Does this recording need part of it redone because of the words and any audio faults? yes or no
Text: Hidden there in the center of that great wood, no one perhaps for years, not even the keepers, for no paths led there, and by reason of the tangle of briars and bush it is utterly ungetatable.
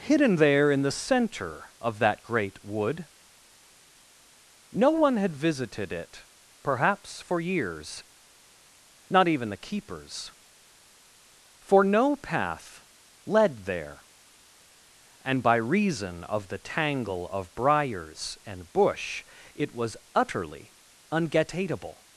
yes